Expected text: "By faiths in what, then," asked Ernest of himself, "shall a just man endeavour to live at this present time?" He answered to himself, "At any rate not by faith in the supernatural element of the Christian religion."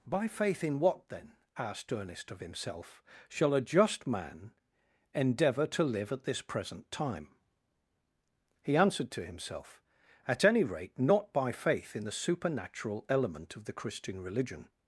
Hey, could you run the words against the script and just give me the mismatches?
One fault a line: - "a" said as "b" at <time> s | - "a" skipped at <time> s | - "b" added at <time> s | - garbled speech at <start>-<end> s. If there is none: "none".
- "faiths" said as "faith" at 0.3 s